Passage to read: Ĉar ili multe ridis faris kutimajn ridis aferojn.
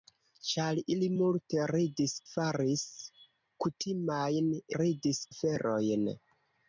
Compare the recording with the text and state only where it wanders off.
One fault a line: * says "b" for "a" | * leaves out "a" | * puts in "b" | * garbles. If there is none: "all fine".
all fine